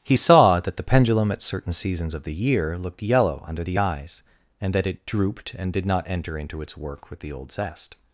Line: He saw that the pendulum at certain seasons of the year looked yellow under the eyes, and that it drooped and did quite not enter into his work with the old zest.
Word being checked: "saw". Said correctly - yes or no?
yes